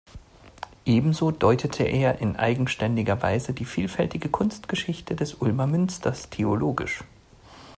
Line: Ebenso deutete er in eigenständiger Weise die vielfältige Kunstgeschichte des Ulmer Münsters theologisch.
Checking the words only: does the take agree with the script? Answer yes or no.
yes